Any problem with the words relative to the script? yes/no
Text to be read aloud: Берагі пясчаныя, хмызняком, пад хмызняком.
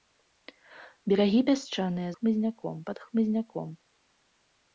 no